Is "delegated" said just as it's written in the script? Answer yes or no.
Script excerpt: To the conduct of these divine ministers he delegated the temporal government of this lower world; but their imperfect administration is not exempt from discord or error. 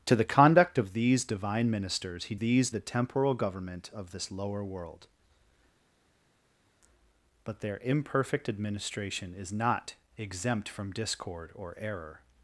no